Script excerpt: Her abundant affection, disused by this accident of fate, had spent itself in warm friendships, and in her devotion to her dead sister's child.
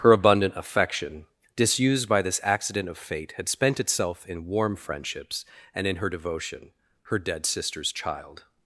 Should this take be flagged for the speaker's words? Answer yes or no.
yes